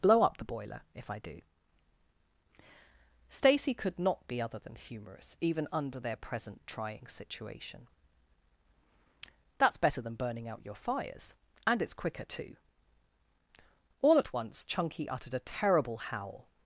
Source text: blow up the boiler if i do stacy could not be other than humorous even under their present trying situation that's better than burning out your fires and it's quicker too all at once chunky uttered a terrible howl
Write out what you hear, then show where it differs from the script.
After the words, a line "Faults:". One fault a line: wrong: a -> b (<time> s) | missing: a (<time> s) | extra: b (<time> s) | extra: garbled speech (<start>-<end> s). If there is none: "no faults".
blow up the boiler if i do stacy could not be other than humorous even under their present trying situation that's better than burning out your fires and it's quicker too all at once chunky uttered a terrible howl
Faults:
no faults